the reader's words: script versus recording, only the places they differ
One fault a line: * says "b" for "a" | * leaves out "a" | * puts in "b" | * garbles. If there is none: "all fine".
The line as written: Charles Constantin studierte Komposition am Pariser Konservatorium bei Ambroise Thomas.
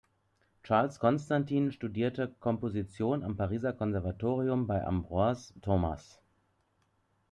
all fine